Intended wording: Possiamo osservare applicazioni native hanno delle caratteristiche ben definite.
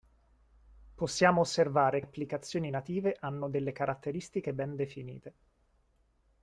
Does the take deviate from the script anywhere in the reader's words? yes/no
no